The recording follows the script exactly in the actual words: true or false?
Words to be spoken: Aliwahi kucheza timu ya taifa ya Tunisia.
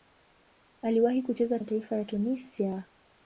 false